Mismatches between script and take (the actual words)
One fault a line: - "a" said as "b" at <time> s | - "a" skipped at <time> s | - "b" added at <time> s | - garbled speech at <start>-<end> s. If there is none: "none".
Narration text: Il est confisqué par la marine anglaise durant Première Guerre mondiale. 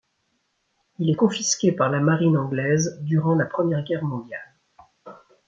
- "la" added at 3.3 s